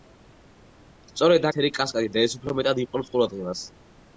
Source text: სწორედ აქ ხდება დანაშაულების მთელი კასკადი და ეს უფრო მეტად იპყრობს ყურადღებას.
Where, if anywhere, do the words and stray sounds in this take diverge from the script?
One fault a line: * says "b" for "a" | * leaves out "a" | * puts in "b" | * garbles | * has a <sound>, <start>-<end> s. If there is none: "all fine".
* leaves out "აქ ხდება დანაშაულების"